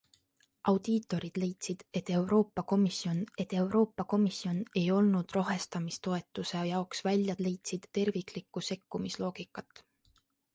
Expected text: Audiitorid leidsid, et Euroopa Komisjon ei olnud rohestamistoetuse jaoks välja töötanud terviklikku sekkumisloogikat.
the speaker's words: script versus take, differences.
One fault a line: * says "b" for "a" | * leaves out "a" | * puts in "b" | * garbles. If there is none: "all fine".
* puts in "et Euroopa Komisjon"
* says "leidsid" for "töötanud"